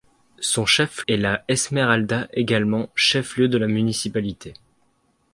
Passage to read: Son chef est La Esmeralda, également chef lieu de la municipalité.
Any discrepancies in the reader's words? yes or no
no